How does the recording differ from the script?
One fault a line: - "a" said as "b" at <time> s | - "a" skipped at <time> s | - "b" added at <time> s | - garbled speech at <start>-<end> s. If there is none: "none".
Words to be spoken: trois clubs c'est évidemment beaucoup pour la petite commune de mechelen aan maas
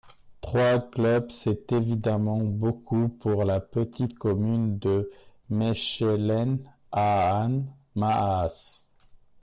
none